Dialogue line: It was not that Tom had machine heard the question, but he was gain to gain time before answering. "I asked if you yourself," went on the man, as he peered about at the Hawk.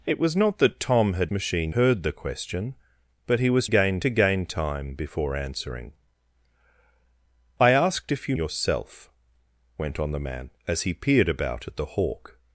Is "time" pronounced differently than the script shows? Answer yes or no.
no